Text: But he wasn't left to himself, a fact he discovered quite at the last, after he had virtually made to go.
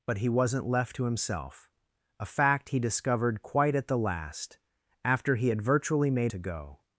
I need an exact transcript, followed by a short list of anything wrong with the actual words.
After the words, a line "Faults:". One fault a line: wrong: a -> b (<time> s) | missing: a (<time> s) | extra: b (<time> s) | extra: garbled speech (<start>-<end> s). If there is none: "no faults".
But he wasn't left to himself, a fact he discovered quite at the last, after he had virtually made to go.
Faults:
no faults